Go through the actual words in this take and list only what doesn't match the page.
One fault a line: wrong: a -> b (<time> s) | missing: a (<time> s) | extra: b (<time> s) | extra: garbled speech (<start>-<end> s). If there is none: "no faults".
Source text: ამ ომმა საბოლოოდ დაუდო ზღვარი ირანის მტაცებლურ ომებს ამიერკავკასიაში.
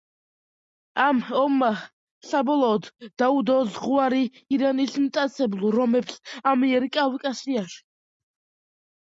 no faults